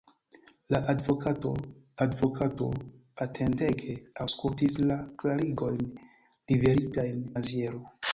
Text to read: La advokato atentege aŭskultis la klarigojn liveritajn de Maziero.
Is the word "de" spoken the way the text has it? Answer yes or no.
no